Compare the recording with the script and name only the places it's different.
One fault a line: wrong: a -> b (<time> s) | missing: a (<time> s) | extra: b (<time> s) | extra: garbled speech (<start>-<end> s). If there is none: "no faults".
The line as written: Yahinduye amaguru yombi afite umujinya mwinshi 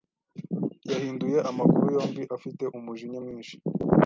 no faults